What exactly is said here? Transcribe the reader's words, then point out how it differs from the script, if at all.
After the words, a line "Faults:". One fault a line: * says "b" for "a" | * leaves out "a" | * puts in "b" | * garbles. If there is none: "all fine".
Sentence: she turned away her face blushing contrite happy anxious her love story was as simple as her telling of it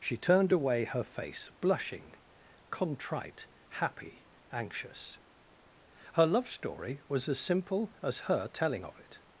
she turned away her face blushing contrite happy anxious her love story was as simple as her telling of it
Faults:
all fine